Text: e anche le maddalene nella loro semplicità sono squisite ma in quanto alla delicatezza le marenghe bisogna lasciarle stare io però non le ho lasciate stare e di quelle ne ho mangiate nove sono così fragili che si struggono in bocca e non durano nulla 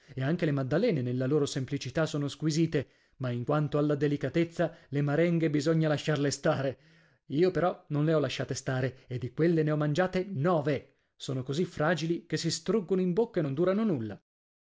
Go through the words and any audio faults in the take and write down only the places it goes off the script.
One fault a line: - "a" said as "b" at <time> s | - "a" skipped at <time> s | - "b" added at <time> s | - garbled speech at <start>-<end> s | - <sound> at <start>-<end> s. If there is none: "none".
none